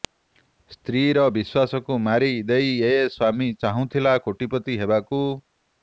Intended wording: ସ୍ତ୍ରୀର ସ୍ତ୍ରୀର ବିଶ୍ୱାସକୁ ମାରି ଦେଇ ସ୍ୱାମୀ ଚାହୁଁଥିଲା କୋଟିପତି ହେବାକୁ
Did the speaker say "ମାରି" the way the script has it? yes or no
yes